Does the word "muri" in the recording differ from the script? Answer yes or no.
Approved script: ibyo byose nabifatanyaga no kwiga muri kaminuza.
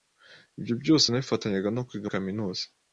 yes